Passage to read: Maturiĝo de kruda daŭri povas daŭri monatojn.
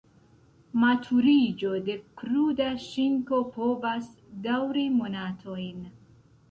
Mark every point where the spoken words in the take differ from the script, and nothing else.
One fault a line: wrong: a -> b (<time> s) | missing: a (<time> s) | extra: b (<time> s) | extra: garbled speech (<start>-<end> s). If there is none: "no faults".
wrong: daŭri -> ŝinko (2.9 s)